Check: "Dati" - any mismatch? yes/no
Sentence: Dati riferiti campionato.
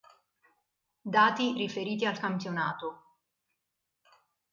no